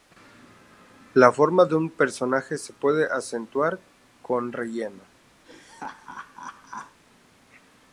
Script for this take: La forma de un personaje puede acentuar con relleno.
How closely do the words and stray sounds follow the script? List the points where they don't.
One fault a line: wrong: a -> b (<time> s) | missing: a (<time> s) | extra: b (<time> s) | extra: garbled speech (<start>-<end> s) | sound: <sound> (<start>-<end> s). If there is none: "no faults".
extra: se (2.6 s)
sound: laugh (5.4-7.0 s)